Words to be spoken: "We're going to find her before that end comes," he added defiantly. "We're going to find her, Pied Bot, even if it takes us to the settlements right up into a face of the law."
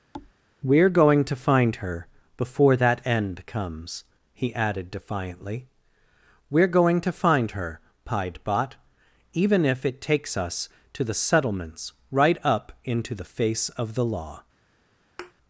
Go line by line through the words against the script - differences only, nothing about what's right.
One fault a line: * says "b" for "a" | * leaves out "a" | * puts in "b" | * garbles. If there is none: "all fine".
* says "the" for "a"